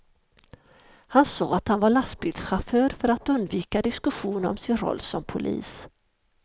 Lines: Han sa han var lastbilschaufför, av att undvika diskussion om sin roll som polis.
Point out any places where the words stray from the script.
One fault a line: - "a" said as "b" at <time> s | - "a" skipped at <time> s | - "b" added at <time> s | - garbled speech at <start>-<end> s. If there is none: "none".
- "att" added at 1.5 s
- "av" said as "för" at 2.9 s